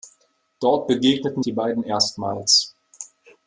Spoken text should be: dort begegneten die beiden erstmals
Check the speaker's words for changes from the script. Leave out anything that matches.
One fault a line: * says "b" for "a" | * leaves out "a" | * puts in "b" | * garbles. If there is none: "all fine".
all fine